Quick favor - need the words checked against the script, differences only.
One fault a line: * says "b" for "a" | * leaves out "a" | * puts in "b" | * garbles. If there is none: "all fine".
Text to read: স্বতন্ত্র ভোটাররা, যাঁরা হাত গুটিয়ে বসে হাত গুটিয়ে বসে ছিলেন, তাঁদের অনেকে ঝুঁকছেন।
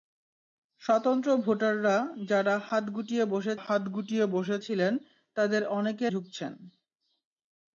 all fine